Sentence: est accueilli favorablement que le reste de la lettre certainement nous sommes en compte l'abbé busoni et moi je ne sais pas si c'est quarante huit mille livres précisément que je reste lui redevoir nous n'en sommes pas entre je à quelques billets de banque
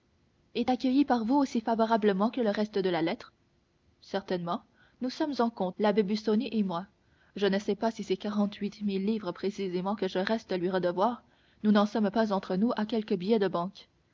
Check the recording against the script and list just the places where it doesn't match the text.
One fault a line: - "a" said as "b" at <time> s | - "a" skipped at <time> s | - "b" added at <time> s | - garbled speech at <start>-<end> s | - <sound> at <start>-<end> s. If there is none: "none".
- "par vous aussi" added at 1.0 s
- "je" said as "nous" at 12.6 s